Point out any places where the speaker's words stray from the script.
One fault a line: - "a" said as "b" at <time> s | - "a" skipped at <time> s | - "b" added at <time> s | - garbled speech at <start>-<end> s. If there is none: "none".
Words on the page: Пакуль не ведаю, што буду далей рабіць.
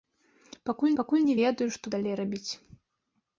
- "пакуль" added at 1.0 s
- "буду" skipped at 1.9 s